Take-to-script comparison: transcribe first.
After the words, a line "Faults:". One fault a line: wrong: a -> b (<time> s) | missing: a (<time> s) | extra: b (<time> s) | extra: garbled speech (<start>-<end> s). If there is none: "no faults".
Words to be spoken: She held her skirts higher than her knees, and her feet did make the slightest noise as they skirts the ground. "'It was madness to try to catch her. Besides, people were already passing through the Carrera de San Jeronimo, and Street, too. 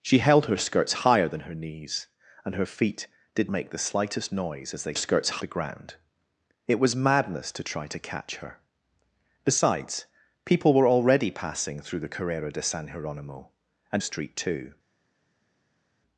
She held her skirts higher than her knees, and her feet did make the slightest noise as they skirts the ground. "'It was madness to try to catch her. Besides, people were already passing through the Carrera de San Jeronimo, and Street, too.
Faults:
no faults